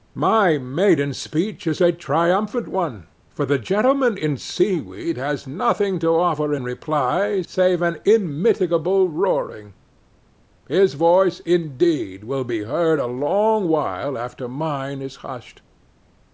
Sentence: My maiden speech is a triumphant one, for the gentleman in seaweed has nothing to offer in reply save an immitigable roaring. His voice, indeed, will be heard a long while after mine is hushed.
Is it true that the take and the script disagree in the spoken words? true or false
false